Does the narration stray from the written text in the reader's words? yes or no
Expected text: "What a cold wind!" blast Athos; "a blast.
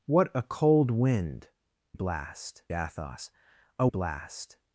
no